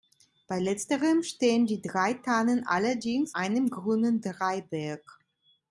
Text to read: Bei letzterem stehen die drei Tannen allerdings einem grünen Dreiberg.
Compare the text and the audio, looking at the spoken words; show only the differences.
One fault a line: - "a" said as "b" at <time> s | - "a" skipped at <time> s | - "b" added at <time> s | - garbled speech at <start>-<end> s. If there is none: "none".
none